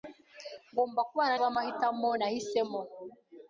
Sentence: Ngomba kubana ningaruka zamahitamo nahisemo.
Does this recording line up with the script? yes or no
no